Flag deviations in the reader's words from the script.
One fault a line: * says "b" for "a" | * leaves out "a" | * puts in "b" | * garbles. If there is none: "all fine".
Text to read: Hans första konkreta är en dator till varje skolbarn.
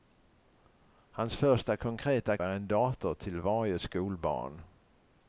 all fine